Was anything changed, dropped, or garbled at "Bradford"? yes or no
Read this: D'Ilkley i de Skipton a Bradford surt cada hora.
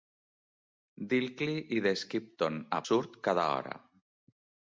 yes